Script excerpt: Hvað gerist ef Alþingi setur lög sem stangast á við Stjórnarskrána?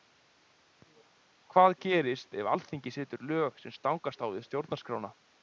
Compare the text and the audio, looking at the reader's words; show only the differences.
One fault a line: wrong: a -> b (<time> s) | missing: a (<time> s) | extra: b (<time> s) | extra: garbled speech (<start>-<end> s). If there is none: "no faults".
no faults